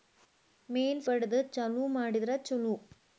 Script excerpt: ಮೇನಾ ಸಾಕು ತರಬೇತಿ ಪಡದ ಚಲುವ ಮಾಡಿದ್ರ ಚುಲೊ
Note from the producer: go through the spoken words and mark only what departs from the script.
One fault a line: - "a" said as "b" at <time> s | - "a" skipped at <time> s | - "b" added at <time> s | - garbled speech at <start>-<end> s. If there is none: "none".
- "ಸಾಕು ತರಬೇತಿ" skipped at 1.0 s